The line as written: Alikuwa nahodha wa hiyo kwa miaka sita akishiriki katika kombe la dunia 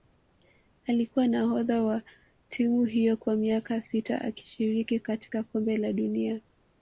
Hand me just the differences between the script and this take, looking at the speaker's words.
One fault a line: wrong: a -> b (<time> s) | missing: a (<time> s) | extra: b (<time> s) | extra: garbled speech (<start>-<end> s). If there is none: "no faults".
extra: timu (2.5 s)